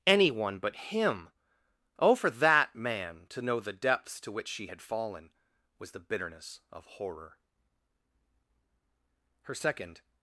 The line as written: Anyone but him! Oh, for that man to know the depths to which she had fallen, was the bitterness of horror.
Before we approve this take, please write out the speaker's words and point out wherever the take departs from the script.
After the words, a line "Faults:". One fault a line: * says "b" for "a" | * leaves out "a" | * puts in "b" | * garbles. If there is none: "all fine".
Anyone but him! Oh, for that man to know the depths to which she had fallen, was the bitterness of horror. Her second
Faults:
* puts in "Her second"